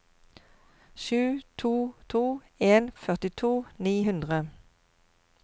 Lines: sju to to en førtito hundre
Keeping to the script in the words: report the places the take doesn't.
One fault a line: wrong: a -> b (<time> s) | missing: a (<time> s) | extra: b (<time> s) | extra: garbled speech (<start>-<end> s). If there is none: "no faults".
extra: ni (3.8 s)